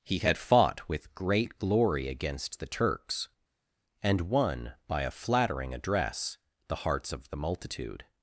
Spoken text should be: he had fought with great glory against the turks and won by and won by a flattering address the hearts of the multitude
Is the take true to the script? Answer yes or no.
no